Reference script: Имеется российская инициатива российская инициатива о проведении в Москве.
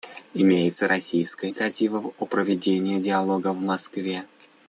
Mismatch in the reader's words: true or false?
true